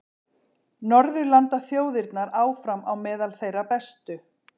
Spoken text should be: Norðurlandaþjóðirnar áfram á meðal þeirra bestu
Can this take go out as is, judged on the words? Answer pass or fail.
pass